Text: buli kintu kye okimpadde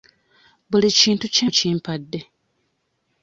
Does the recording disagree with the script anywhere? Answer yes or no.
no